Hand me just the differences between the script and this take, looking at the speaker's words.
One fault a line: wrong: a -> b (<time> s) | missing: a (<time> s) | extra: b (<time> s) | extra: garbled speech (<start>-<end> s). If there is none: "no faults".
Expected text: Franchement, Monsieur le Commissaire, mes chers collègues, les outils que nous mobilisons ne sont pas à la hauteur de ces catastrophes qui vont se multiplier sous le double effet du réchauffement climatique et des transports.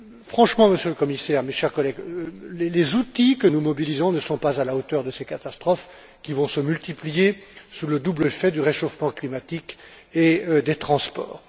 no faults